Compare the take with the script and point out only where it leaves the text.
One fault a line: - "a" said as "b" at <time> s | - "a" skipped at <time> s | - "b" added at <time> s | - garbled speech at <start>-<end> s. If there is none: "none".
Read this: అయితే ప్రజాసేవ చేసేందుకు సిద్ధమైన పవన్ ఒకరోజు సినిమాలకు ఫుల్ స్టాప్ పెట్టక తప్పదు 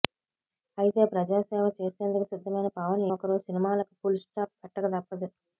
none